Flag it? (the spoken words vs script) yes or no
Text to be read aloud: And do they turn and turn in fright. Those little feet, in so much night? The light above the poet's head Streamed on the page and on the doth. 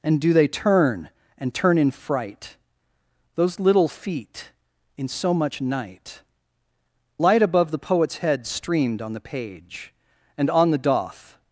yes